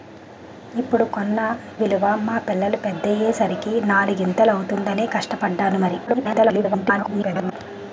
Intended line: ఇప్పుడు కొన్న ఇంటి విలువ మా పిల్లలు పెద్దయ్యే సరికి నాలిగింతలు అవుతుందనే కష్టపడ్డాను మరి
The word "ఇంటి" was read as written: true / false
false